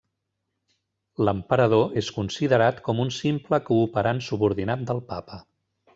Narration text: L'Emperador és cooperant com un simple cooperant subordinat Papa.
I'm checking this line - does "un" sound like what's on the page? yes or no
yes